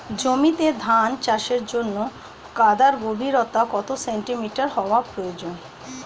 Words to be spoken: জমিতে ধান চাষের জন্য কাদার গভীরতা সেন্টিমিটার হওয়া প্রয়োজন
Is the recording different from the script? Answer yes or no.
yes